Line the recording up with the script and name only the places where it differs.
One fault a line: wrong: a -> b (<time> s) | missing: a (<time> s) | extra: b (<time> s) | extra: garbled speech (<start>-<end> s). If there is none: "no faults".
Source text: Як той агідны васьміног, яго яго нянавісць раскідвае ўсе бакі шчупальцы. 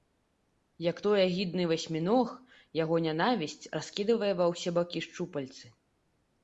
missing: яго (3.0 s)
extra: ва (4.4 s)